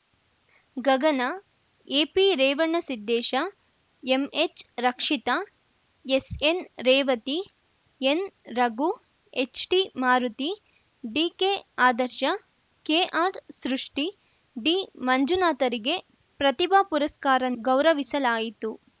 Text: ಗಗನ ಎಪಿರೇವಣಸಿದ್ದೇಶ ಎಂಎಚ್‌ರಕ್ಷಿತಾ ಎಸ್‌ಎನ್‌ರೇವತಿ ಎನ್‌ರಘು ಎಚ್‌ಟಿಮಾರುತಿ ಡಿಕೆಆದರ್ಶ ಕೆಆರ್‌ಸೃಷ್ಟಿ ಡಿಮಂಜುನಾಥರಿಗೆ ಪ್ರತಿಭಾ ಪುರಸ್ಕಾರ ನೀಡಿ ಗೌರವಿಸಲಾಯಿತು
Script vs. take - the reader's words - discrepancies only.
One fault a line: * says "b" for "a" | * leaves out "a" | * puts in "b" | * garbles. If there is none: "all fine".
* leaves out "ನೀಡಿ"